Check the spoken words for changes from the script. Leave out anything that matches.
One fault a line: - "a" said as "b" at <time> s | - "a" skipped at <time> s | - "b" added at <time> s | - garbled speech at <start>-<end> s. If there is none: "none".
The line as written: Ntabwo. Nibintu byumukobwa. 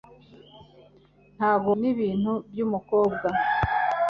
none